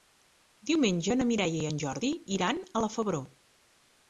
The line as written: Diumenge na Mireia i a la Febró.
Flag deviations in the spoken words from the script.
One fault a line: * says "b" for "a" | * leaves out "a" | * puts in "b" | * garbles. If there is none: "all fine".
* puts in "en Jordi iran"